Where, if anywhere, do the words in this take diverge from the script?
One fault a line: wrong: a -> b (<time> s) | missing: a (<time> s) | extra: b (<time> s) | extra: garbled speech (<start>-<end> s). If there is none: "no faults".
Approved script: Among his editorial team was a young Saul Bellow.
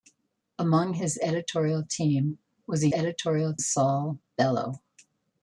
wrong: young -> editorial (2.9 s)